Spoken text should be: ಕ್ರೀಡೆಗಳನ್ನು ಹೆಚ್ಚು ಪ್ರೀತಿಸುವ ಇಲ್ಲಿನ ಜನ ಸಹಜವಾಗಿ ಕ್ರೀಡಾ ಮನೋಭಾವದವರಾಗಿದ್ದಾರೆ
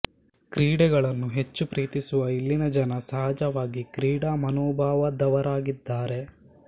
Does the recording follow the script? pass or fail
pass